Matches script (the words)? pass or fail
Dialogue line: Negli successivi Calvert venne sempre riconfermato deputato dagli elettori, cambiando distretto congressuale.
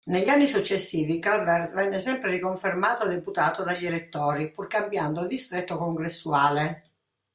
fail